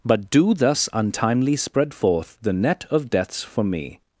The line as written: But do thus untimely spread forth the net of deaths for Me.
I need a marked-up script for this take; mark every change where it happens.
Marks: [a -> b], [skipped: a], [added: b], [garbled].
But do thus untimely spread forth the net of deaths for Me.